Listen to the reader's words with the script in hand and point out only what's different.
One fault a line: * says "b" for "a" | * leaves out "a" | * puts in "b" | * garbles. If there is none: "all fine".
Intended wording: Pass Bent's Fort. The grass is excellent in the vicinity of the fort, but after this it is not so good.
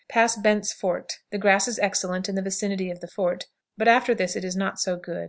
all fine